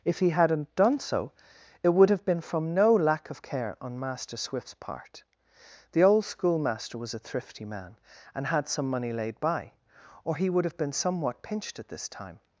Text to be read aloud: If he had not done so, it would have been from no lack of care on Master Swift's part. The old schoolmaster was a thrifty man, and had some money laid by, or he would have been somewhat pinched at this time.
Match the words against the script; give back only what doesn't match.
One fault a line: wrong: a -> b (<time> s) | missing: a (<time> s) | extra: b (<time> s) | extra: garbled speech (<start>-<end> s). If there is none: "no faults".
no faults